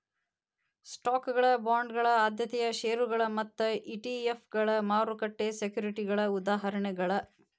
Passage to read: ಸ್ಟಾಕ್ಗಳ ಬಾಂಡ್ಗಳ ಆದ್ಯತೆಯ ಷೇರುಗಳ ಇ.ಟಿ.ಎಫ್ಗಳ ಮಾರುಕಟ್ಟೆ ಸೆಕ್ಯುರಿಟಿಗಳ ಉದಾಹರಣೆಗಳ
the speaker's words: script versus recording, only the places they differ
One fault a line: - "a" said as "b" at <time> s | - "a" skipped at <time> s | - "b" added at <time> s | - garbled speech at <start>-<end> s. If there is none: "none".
- "ಮತ್ತ" added at 3.4 s